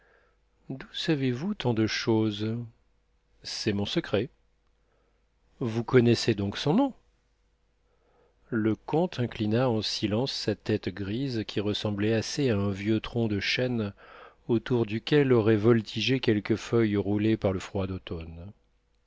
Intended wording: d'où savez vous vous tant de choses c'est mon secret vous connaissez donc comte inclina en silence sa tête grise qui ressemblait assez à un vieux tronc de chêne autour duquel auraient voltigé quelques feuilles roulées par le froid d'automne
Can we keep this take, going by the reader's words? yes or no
no